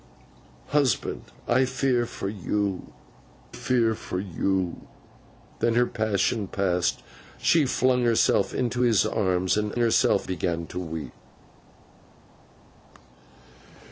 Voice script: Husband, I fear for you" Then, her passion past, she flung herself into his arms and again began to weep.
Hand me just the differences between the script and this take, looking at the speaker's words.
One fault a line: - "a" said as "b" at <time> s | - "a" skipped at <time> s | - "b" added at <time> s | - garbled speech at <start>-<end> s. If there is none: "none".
- "fear for you" added at 3.5 s
- "again" said as "herself" at 9.8 s